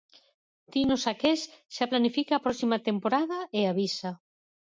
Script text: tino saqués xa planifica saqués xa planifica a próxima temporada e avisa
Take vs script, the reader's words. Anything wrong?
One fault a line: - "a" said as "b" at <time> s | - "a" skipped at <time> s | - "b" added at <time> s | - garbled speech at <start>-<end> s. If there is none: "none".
- "saqués xa planifica" skipped at 2.3 s